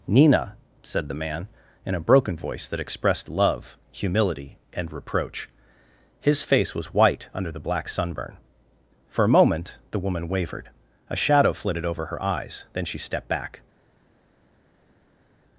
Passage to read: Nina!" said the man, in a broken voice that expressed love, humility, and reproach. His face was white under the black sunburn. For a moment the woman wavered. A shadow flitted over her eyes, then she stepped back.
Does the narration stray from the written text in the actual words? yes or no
no